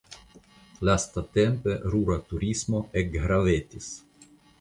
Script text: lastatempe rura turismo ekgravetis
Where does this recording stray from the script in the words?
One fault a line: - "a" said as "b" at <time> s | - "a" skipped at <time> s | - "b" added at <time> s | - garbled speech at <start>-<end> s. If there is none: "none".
none